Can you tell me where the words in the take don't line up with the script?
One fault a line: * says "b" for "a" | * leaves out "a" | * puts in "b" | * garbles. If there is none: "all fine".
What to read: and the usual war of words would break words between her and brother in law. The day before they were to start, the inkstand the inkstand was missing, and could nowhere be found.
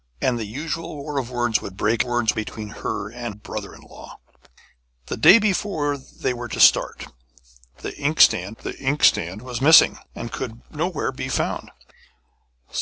all fine